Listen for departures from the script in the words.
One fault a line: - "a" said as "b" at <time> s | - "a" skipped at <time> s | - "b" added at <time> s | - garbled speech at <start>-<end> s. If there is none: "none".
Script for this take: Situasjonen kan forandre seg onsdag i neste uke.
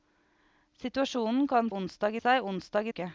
- "forandre" said as "onsdag" at 1.7 s
- "neste" skipped at 2.9 s